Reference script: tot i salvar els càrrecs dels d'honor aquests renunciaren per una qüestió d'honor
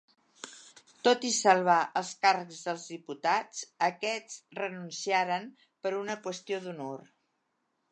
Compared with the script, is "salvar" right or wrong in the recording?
right